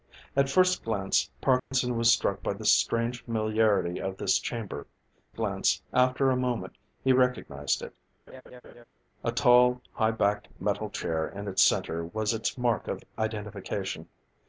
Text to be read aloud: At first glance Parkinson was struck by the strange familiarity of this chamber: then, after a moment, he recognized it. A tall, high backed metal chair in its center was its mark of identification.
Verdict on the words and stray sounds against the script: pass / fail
fail